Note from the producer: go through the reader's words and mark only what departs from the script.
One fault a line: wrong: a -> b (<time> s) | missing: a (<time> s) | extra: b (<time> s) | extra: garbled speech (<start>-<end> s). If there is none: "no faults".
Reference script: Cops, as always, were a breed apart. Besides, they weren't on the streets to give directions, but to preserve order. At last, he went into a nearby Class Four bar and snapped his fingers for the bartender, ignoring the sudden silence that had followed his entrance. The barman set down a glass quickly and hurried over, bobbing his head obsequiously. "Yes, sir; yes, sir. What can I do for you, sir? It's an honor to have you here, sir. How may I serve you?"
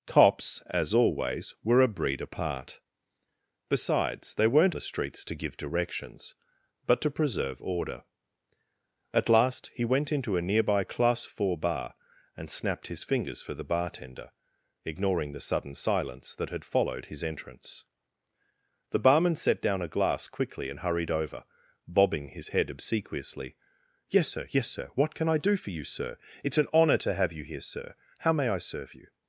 missing: on (4.8 s)